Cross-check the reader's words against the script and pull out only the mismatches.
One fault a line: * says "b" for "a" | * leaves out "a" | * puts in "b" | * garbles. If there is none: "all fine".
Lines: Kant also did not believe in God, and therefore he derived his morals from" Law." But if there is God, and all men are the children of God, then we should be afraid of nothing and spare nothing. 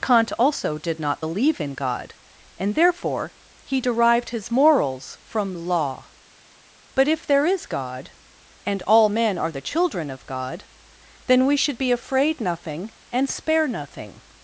* leaves out "of"